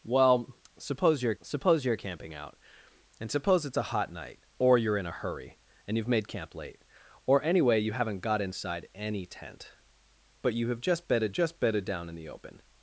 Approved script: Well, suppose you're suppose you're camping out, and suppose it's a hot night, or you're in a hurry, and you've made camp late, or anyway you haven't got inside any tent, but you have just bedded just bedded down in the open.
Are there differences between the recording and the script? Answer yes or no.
no